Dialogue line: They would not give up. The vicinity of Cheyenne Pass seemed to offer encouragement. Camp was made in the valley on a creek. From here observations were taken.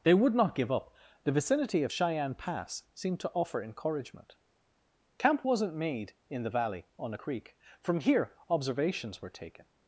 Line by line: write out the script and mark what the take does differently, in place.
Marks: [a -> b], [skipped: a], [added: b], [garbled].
They would not give up. The vicinity of Cheyenne Pass seemed to offer encouragement. Camp [was -> wasn't] made in the valley on a creek. From here observations were taken.